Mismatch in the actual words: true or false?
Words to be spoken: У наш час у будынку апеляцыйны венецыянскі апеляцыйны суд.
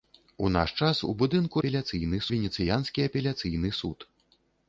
false